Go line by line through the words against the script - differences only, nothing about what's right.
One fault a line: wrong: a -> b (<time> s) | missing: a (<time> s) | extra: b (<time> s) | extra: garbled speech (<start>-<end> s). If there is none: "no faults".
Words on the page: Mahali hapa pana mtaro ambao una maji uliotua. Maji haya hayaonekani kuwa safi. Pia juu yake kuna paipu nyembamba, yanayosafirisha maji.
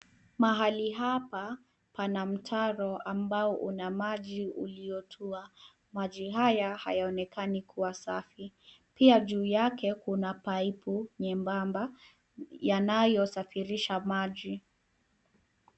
no faults